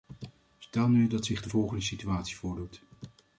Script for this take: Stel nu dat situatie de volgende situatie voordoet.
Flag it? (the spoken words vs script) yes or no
yes